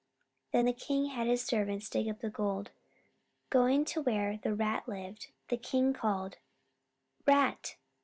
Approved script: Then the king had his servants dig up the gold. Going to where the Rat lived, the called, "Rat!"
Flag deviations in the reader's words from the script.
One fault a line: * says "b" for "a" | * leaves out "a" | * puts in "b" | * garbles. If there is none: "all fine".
* puts in "king"